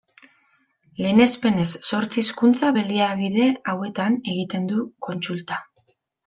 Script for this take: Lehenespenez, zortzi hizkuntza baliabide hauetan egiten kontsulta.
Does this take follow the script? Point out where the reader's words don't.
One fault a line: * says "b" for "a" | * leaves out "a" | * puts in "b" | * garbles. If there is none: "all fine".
* puts in "du"